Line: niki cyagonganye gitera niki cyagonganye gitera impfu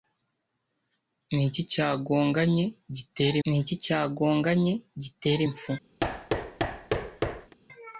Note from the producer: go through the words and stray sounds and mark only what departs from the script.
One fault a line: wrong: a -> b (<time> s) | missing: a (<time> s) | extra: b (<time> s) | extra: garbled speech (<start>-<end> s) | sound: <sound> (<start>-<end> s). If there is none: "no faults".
sound: thud (6.0-7.5 s)